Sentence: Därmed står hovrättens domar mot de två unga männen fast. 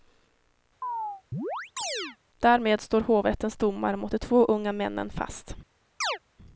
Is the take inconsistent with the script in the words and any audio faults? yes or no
yes